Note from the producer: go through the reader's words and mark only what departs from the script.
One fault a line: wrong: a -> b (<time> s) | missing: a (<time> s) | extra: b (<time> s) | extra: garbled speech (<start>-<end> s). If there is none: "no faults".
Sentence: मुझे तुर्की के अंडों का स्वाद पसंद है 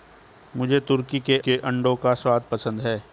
extra: के (1.4 s)